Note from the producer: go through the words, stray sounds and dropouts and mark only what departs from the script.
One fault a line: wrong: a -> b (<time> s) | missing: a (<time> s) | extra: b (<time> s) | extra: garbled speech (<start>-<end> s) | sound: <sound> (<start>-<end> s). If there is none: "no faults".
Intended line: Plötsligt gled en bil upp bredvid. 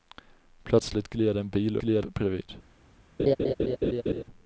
wrong: upp -> gled (1.8 s)
sound: laugh (3.2-4.2 s)